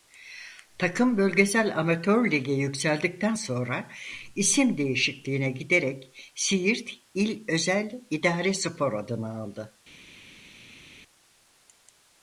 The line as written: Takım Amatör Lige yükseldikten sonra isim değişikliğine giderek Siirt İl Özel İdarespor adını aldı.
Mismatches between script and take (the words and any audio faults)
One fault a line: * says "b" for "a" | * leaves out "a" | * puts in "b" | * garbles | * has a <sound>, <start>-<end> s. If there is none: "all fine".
* puts in "Bölgesel"